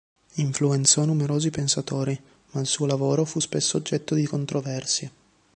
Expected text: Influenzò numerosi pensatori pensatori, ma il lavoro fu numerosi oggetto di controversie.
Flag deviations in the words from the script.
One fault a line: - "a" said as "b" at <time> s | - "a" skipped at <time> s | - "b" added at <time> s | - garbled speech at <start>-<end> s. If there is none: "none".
- "pensatori" skipped at 2.2 s
- "suo" added at 2.6 s
- "numerosi" said as "spesso" at 3.4 s